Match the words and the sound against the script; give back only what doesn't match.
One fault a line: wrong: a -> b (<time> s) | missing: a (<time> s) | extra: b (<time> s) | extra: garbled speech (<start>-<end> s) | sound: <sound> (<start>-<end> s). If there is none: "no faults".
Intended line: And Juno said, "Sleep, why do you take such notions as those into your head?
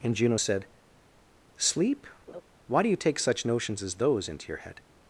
sound: laugh (2.3-2.4 s)